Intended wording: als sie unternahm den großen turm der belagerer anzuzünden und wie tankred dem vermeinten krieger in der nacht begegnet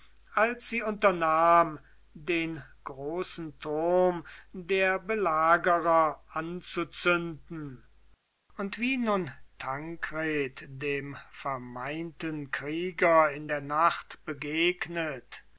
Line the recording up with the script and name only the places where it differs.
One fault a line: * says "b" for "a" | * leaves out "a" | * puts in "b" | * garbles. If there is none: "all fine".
* puts in "nun"